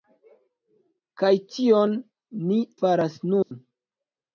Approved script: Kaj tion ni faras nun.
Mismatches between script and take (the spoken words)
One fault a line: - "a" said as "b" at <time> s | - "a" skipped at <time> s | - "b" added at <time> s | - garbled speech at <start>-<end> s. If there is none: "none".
none